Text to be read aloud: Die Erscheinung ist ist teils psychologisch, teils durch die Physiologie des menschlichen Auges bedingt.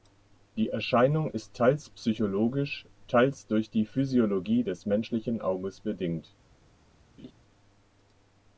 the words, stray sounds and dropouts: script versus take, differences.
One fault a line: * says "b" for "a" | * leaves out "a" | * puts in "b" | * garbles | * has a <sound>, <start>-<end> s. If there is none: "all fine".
* leaves out "ist"
* has a laugh, 7.2-7.3 s